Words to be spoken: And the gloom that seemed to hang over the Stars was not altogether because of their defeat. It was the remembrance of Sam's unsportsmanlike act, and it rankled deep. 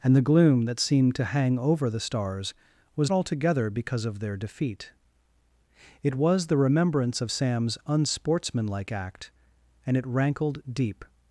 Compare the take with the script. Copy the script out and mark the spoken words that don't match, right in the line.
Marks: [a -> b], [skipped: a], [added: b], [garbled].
And the gloom that seemed to hang over the Stars was [skipped: not] altogether because of their defeat. It was the remembrance of Sam's unsportsmanlike act, and it rankled deep.